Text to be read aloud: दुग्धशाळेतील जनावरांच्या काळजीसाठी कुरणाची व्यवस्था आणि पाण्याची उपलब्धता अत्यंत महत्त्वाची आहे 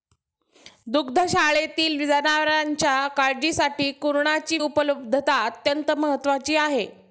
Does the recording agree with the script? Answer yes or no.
no